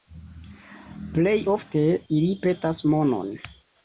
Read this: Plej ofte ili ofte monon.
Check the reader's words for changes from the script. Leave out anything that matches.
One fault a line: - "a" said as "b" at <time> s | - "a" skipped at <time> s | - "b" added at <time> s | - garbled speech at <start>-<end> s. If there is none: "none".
- "ofte" said as "petas" at 2.4 s